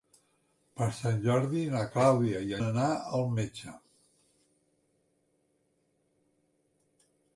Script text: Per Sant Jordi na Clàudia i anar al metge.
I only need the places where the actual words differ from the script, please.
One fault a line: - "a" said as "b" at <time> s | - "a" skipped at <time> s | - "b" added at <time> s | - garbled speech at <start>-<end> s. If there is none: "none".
none